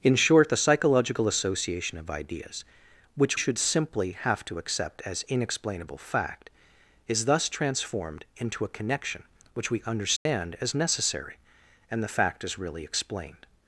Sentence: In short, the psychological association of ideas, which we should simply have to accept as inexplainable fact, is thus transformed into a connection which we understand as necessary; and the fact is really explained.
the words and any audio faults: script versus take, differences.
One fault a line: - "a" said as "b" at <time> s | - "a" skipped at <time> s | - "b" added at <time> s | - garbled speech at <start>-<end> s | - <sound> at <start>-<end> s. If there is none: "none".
- "we" skipped at 3.4 s
- dropout at 10.2-10.3 s